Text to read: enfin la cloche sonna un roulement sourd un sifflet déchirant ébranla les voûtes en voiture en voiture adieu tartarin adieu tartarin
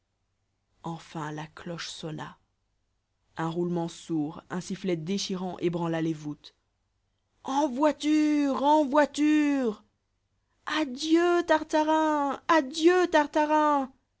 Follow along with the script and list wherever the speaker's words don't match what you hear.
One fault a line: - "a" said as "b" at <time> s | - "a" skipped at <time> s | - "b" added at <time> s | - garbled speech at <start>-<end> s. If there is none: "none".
none